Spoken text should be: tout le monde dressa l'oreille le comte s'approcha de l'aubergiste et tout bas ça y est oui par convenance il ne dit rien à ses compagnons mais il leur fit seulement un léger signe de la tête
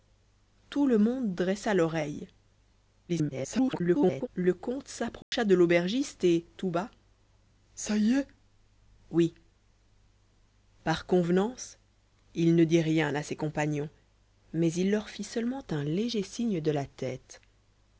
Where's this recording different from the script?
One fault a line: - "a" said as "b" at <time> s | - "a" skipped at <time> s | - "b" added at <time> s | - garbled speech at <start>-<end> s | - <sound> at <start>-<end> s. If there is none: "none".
- garbled speech at 3.1-4.3 s
- dropout at 5.2-5.3 s